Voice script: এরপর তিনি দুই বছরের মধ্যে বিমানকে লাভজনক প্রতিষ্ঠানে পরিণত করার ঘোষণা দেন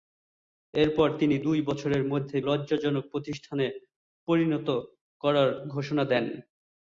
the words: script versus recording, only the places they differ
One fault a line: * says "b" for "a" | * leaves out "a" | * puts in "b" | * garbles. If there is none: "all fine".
* leaves out "বিমানকে"